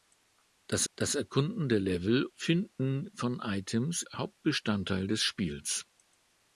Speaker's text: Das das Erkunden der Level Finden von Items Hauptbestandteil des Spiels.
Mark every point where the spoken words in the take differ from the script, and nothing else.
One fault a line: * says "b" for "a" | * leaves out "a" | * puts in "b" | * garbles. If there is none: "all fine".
all fine